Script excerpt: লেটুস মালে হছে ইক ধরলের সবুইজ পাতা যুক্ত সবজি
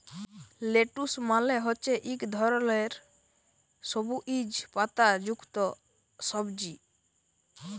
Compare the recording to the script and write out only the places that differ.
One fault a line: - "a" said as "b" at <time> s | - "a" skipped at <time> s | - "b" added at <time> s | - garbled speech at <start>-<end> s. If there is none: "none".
none